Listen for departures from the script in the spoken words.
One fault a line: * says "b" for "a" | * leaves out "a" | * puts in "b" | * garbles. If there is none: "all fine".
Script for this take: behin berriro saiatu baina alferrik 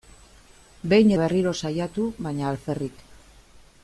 all fine